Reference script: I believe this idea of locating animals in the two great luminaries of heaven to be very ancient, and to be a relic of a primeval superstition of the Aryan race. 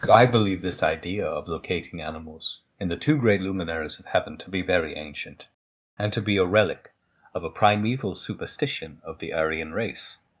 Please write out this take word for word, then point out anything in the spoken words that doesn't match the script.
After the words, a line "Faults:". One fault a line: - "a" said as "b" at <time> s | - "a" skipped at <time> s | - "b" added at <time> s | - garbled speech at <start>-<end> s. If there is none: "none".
I believe this idea of locating animals in the two great luminaries of heaven to be very ancient, and to be a relic of a primeval superstition of the Aryan race.
Faults:
none